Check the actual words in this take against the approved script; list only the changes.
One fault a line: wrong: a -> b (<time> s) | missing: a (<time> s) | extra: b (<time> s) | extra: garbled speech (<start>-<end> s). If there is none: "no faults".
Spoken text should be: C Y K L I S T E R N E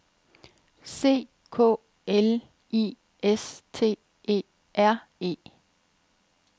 missing: Y (1.3 s)
missing: N (5.0 s)